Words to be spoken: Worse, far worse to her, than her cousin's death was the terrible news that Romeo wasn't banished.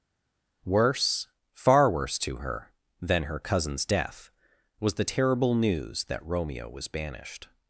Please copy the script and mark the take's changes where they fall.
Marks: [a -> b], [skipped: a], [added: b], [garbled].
Worse, far worse to her, than her cousin's death was the terrible news that Romeo [wasn't -> was] banished.